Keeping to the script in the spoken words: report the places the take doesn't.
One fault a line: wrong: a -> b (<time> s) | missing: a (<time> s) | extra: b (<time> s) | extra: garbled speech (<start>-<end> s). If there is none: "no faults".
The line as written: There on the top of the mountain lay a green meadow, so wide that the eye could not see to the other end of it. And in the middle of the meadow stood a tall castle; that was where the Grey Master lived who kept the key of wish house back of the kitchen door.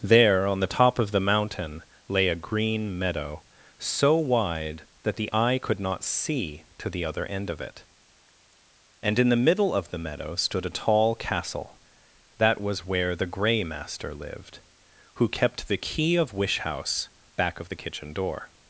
no faults